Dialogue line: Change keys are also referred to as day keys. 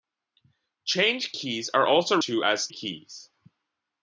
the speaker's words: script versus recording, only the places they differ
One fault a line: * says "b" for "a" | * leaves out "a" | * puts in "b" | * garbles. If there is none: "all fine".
* leaves out "referred"
* leaves out "day"